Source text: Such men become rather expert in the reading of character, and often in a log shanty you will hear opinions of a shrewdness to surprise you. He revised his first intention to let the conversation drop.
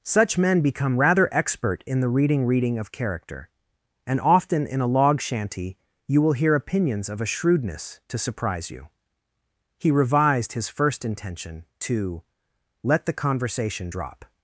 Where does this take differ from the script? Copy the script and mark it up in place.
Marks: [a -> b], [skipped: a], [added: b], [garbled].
Such men become rather expert in the reading [added: reading] of character, and often in a log shanty you will hear opinions of a shrewdness to surprise you. He revised his first intention to let the conversation drop.